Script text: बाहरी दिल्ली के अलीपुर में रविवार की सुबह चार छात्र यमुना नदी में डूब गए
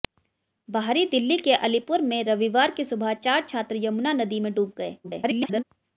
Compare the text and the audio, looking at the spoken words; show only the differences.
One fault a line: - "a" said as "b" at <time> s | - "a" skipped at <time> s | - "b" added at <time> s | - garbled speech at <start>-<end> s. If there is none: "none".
- garbled speech at 5.0-5.6 s